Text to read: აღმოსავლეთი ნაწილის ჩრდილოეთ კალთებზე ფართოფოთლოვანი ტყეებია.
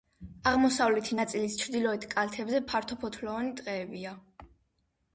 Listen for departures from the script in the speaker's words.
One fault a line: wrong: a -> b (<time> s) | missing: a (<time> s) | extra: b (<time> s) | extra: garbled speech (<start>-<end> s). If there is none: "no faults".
no faults